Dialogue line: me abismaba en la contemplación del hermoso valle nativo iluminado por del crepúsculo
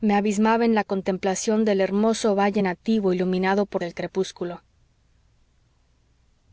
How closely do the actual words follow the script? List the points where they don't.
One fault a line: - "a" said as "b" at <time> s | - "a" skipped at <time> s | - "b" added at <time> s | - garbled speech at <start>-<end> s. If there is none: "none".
none